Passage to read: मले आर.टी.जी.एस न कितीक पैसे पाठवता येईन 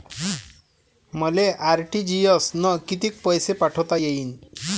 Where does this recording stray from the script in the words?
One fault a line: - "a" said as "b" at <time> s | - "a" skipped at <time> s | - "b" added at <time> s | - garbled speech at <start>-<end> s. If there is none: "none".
none